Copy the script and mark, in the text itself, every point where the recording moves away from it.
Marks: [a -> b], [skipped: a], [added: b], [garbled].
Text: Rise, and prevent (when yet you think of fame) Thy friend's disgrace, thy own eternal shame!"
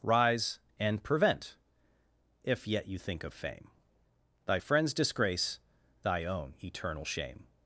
Rise, and prevent [(when -> if] yet you think of fame) Thy friend's disgrace, thy own eternal shame!"